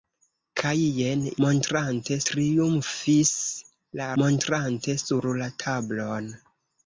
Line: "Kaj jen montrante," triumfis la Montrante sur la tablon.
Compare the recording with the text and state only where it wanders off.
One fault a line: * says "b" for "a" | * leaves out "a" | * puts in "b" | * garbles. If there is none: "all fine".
all fine